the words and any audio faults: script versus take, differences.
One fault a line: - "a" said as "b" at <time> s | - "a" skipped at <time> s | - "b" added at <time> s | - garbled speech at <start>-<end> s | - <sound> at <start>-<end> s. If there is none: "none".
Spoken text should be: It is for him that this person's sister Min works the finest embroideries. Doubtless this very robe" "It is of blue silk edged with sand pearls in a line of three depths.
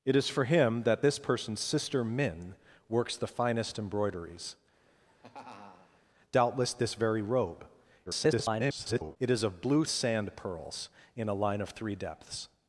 - laugh at 4.9-6.0 s
- garbled speech at 8.1-9.2 s
- "silk edged with" skipped at 9.8 s